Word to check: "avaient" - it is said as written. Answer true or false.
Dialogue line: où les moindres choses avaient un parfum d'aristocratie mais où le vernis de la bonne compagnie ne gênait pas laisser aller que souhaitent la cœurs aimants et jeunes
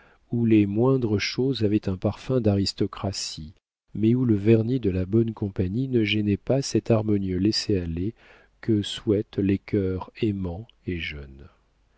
true